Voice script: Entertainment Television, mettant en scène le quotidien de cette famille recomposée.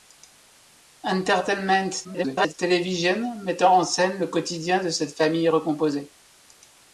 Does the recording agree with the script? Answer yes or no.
no